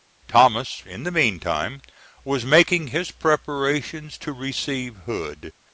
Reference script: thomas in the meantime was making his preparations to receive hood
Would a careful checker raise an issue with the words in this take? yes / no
no